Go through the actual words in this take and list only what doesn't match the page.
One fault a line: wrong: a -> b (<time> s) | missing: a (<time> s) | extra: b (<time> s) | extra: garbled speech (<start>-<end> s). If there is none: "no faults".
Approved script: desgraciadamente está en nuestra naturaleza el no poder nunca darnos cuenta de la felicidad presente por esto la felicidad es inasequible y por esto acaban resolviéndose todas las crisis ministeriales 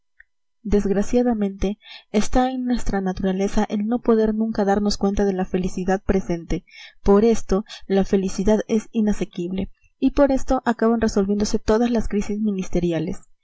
no faults